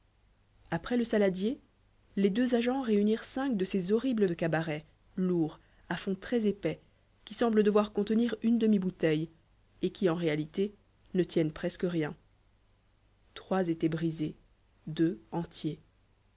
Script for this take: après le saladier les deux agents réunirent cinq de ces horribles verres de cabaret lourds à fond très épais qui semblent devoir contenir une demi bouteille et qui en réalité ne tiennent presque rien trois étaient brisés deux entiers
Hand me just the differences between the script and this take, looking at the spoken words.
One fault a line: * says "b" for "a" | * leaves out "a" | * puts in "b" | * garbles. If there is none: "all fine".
* leaves out "verres"